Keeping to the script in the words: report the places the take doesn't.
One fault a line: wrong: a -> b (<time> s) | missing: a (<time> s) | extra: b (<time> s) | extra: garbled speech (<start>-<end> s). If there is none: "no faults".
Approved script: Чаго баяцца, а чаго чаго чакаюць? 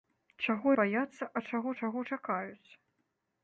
no faults